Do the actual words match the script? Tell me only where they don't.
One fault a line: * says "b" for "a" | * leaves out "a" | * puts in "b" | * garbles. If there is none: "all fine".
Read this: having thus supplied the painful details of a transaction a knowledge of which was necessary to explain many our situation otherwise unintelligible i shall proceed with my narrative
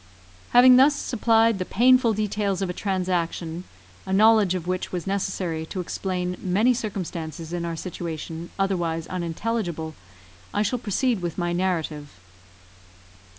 * puts in "circumstances in"